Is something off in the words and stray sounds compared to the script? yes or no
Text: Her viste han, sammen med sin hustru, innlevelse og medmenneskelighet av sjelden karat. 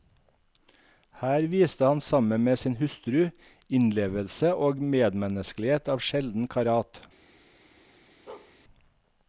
yes